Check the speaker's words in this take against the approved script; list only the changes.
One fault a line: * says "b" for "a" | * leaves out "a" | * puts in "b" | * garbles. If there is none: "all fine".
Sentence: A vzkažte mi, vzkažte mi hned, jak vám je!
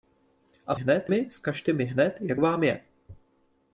* says "hned" for "vzkažte"